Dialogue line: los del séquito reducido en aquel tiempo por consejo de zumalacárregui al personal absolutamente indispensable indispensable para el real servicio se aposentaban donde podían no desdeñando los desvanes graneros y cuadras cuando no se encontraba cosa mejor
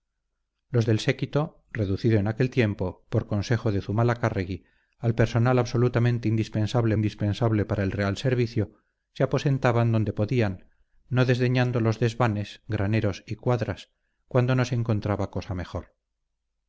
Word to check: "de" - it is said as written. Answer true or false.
true